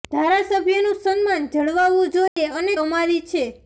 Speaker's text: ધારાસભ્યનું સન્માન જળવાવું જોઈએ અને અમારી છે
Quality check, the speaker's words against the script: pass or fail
pass